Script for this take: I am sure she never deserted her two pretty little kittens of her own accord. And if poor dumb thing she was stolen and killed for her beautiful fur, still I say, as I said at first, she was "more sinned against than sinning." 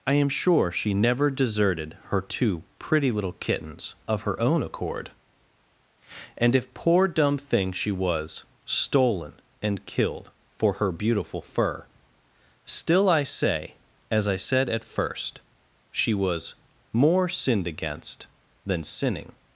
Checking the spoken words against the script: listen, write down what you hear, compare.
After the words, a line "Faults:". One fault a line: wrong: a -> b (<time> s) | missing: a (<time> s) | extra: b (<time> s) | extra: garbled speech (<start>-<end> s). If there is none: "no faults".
I am sure she never deserted her two pretty little kittens of her own accord. And if poor dumb thing she was stolen and killed for her beautiful fur, still I say, as I said at first, she was "more sinned against than sinning."
Faults:
no faults